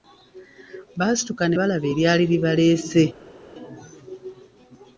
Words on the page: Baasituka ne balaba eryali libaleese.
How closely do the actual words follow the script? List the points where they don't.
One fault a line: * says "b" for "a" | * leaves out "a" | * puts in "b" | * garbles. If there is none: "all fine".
all fine